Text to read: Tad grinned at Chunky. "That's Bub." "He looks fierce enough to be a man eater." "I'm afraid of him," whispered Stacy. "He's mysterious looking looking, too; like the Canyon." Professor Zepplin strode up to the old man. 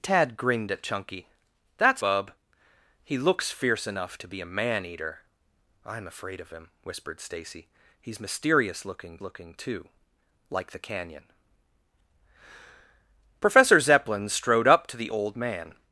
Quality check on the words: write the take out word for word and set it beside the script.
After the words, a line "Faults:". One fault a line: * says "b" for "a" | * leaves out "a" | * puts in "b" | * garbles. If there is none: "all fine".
Tad grinned at Chunky. "That's Bub." "He looks fierce enough to be a man eater." "I'm afraid of him," whispered Stacy. "He's mysterious looking looking, too; like the Canyon." Professor Zepplin strode up to the old man.
Faults:
all fine